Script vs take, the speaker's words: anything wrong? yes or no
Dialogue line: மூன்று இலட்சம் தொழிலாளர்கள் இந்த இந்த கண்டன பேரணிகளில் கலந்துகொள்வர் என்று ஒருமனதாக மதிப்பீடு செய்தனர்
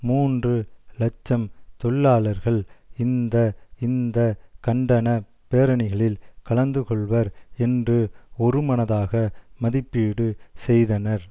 no